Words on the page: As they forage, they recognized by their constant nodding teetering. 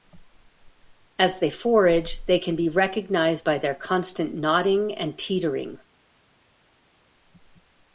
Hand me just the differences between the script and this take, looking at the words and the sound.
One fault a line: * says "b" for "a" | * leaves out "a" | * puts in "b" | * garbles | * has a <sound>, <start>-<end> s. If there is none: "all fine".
* puts in "can be"
* puts in "and"